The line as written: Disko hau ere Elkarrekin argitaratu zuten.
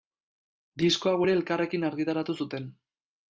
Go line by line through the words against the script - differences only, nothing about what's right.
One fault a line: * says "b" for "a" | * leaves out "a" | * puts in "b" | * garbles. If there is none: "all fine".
all fine